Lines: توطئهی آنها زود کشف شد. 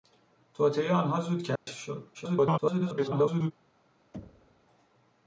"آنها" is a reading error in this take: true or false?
false